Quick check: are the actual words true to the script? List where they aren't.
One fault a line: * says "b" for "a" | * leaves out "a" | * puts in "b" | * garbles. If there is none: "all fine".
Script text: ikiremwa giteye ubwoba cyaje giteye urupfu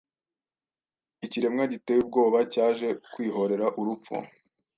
* says "kwihorera" for "giteye"